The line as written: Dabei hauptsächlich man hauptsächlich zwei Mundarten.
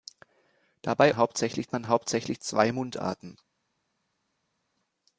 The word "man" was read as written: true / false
true